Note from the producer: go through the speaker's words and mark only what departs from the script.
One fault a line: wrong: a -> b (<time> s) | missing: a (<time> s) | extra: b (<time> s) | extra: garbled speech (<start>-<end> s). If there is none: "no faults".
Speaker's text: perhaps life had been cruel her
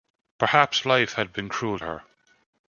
no faults